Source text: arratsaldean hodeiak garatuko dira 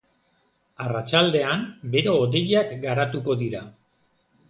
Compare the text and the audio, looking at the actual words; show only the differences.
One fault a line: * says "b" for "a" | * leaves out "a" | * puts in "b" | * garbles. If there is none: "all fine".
* puts in "bero"